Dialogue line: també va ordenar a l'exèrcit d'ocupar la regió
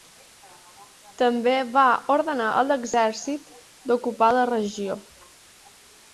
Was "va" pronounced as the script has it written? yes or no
yes